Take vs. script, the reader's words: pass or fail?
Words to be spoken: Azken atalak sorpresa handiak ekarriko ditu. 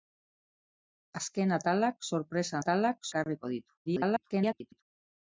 fail